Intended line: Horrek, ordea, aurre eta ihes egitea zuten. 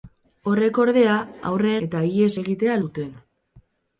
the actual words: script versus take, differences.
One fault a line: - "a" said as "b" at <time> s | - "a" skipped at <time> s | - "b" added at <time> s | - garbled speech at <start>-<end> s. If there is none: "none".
none